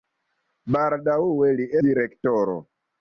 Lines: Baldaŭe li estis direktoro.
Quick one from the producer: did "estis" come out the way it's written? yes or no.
no